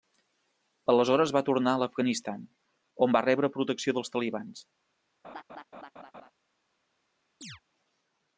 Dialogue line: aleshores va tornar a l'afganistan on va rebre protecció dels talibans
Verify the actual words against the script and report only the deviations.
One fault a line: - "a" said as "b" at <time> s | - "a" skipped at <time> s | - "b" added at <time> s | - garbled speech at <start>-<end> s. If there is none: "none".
none